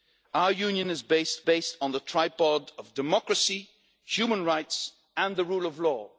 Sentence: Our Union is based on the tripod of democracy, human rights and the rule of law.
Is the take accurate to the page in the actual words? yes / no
no